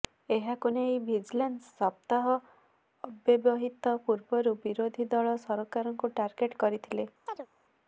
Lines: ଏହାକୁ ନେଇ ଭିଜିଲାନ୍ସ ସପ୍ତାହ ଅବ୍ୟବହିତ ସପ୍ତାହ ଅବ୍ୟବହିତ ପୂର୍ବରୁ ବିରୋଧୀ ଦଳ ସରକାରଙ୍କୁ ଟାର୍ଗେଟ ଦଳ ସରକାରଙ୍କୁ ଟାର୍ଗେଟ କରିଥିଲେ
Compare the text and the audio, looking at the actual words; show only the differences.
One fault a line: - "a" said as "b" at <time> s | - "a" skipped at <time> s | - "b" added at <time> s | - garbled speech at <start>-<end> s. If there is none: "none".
- "ସପ୍ତାହ ଅବ୍ୟବହିତ" skipped at 4.0 s
- "ଦଳ ସରକାରଙ୍କୁ ଟାର୍ଗେଟ" skipped at 6.6 s